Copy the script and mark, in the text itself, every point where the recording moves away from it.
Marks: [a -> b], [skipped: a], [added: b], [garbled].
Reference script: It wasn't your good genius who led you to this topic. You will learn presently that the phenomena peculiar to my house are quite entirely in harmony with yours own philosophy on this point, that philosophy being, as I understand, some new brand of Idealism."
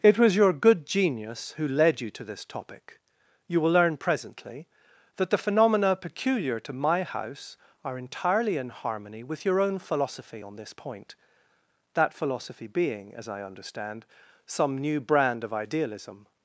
It [wasn't -> was] your good genius who led you to this topic. You will learn presently that the phenomena peculiar to my house are [skipped: quite] entirely in harmony with [yours -> your] own philosophy on this point, that philosophy being, as I understand, some new brand of Idealism."